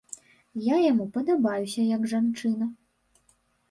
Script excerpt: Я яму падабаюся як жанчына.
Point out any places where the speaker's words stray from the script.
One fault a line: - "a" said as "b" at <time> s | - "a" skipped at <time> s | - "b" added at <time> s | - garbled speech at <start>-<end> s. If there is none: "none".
none